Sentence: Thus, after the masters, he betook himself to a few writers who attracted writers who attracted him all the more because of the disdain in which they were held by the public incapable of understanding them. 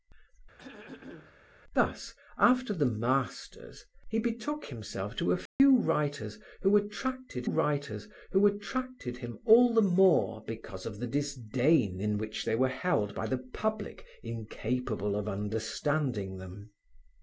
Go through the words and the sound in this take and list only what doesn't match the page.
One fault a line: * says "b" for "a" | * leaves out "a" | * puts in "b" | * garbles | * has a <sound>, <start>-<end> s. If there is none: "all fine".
* has a throat clearing, 0.6-1.4 s
* has a dropout, 5.5-5.6 s